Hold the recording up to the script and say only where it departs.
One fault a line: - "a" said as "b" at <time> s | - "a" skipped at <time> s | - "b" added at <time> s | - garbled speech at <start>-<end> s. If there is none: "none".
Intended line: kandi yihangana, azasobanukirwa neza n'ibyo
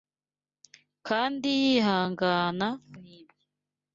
- "azasobanukirwa neza" skipped at 2.7 s